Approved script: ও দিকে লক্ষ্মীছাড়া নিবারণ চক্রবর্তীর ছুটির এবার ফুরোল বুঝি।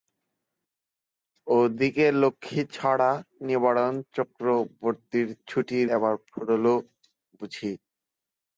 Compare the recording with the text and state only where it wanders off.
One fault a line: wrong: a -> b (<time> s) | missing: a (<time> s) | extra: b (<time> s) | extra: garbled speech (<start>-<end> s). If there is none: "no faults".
no faults